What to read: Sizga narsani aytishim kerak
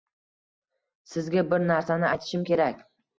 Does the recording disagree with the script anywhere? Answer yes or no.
yes